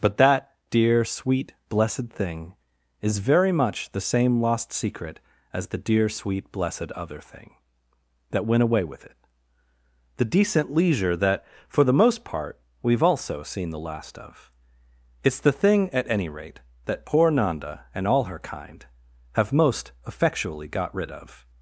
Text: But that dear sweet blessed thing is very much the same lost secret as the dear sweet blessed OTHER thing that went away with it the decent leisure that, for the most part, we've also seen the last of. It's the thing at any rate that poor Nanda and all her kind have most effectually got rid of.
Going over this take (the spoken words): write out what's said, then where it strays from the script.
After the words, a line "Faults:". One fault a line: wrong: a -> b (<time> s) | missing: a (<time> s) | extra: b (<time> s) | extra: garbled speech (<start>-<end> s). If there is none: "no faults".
But that dear sweet blessed thing is very much the same lost secret as the dear sweet blessed OTHER thing that went away with it the decent leisure that, for the most part, we've also seen the last of. It's the thing at any rate that poor Nanda and all her kind have most effectually got rid of.
Faults:
no faults